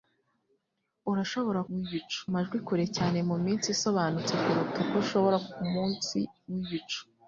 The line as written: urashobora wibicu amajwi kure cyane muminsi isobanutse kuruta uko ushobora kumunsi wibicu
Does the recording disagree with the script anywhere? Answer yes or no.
no